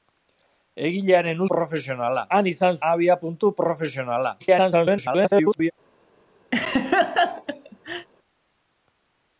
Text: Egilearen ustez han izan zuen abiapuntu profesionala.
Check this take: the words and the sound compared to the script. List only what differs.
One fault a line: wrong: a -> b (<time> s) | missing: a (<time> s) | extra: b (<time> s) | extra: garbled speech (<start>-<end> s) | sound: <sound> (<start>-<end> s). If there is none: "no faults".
wrong: ustez -> profesionala (1.5 s)
missing: zuen (2.8 s)
extra: garbled speech (4.4-5.7 s)
sound: laugh (6.5-8.1 s)